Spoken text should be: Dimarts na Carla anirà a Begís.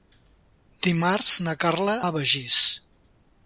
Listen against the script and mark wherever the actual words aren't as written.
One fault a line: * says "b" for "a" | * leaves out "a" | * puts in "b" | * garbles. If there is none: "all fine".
* leaves out "anirà"